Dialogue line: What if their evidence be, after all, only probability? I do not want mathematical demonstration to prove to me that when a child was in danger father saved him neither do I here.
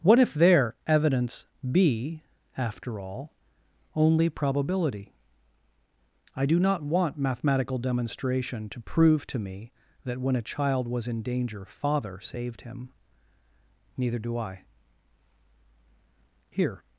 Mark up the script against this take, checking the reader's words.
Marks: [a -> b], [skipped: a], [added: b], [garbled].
What if their evidence be, after all, only probability? I do not want mathematical demonstration to prove to me that when a child was in danger father saved him neither do I here.